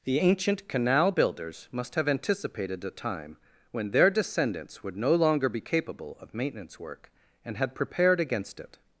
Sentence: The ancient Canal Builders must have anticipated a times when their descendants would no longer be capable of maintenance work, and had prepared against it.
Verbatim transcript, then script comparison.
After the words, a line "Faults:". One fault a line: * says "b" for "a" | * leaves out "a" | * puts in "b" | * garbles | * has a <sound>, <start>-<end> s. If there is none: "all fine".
The ancient Canal Builders must have anticipated a time when their descendants would no longer be capable of maintenance work, and had prepared against it.
Faults:
* says "time" for "times"